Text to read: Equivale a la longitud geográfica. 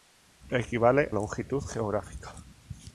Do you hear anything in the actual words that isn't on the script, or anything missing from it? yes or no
yes